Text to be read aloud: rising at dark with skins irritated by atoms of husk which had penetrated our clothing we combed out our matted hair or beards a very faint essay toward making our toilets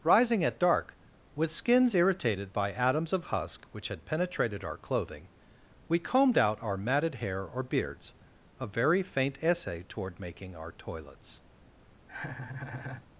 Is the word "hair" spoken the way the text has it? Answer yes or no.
yes